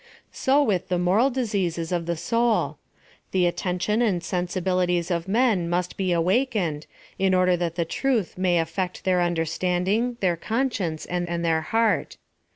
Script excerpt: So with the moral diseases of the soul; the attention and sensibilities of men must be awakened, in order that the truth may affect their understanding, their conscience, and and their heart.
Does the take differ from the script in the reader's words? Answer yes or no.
no